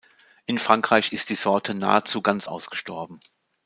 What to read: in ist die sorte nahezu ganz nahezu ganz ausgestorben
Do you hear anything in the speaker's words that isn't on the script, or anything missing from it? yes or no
yes